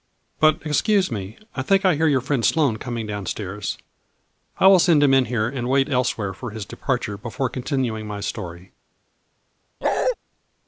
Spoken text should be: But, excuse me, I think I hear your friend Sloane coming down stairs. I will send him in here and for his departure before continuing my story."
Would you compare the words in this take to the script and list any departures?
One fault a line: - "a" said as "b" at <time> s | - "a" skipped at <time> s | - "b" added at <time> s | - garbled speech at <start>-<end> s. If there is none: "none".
- "wait elsewhere" added at 5.7 s